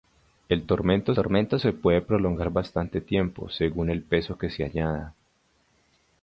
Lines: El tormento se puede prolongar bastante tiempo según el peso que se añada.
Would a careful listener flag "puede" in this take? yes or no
no